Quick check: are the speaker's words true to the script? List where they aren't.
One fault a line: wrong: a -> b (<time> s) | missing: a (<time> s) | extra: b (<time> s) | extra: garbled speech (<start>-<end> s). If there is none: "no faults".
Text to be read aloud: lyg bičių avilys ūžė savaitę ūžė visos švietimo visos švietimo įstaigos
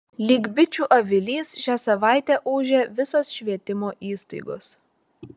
wrong: ūžė -> šią (1.6 s)
missing: visos švietimo (3.9 s)